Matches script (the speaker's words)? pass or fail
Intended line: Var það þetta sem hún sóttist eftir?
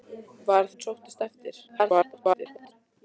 fail